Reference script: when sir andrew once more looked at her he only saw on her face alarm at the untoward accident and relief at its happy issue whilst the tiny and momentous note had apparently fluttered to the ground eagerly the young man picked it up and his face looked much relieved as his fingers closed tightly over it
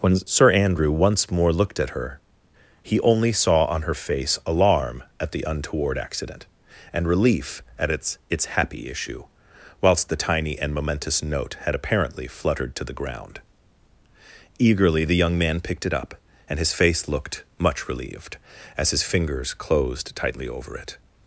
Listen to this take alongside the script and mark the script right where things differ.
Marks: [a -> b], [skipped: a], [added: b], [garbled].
when sir andrew once more looked at her he only saw on her face alarm at the untoward accident and relief at its [added: its] happy issue whilst the tiny and momentous note had apparently fluttered to the ground eagerly the young man picked it up and his face looked much relieved as his fingers closed tightly over it